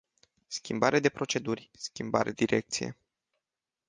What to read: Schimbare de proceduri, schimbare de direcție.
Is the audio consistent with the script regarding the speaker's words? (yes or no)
no